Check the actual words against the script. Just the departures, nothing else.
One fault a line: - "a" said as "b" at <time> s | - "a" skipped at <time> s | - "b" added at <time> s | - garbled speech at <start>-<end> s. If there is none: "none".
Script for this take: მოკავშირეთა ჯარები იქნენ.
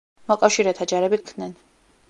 none